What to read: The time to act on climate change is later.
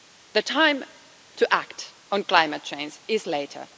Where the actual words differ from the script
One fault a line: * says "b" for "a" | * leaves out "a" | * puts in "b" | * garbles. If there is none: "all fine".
all fine